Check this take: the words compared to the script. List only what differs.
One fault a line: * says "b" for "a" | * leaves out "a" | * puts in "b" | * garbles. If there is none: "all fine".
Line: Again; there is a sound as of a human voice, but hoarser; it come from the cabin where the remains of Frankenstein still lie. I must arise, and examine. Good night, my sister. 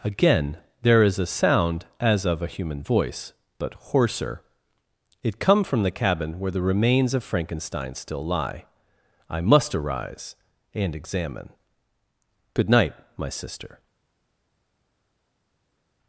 all fine